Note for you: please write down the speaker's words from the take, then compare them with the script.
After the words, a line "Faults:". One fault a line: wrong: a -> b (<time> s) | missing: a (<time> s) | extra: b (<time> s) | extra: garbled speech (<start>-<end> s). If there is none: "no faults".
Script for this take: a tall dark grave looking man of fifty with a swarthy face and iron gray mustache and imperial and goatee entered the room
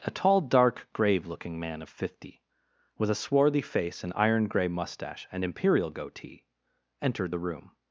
a tall dark grave looking man of fifty with a swarthy face and iron gray mustache and imperial goatee entered the room
Faults:
missing: and (5.9 s)